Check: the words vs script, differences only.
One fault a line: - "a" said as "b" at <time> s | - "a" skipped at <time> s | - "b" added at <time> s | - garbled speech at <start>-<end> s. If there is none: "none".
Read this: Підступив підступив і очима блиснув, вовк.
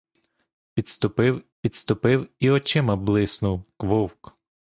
none